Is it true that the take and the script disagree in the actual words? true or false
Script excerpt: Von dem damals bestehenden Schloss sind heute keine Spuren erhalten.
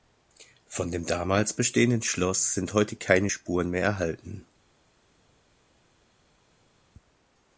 true